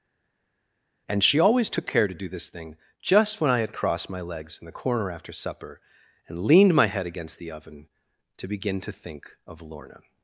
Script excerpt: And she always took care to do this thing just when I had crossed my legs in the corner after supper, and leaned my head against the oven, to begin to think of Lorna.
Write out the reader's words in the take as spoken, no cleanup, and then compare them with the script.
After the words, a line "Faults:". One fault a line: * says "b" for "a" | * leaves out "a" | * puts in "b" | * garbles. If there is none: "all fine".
And she always took care to do this thing just when I had crossed my legs in the corner after supper, and leaned my head against the oven, to begin to think of Lorna.
Faults:
all fine